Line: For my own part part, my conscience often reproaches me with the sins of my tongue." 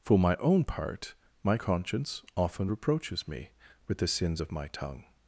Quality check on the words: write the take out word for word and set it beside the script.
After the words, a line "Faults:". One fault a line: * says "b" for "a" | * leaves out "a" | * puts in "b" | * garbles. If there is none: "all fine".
For my own part, my conscience often reproaches me with the sins of my tongue."
Faults:
* leaves out "part"